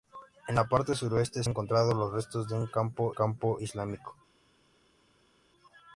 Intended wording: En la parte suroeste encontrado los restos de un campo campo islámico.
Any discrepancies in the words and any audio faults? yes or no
no